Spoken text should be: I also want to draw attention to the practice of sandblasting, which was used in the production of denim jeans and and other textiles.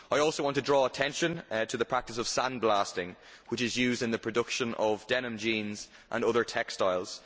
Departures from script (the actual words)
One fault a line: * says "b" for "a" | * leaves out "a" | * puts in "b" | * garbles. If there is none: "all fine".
* says "is" for "was"
* leaves out "and"